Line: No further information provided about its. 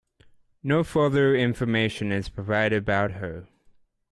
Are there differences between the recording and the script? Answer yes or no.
yes